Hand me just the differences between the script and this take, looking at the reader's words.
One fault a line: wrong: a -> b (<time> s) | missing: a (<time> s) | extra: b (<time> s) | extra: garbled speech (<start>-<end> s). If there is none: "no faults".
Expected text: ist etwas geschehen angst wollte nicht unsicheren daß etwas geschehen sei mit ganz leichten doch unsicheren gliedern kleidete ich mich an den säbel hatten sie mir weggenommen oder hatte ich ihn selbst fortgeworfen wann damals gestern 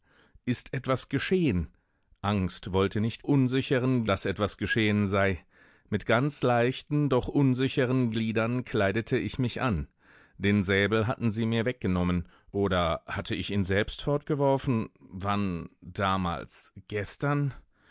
no faults